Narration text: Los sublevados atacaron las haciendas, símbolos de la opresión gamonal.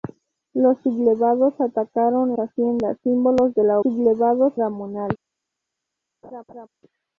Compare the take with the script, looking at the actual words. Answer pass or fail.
fail